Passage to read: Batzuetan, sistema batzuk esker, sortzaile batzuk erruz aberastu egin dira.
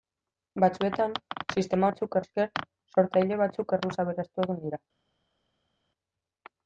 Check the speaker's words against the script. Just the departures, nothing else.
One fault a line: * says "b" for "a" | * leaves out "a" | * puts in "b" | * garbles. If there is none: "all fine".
all fine